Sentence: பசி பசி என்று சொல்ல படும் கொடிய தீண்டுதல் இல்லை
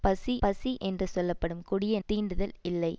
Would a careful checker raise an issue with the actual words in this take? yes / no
no